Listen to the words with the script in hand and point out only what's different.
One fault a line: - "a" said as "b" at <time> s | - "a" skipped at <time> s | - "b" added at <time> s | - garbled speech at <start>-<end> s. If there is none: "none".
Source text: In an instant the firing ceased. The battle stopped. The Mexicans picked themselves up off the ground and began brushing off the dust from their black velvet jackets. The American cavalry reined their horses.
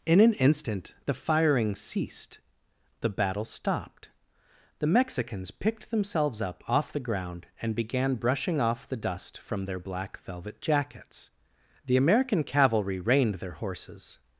none